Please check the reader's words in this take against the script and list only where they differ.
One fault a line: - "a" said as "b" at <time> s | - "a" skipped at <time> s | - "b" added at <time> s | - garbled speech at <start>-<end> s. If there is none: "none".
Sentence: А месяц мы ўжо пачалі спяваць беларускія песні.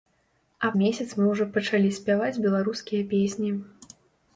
none